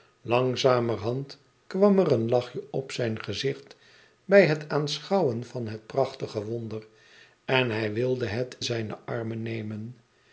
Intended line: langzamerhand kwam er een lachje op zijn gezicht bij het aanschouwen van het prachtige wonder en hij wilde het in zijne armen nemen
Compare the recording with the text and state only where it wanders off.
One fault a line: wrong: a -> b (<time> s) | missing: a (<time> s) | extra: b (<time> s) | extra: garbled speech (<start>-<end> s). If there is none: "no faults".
missing: in (8.6 s)